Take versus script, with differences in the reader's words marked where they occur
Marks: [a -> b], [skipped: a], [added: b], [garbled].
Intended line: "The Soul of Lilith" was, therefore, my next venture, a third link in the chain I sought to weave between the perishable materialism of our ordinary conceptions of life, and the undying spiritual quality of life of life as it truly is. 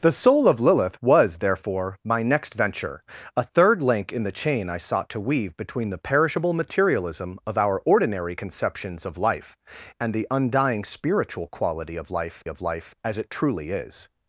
"The Soul of Lilith" was, therefore, my next venture, a third link in the chain I sought to weave between the perishable materialism of our ordinary conceptions of life, and the undying spiritual quality of life of life as it truly is.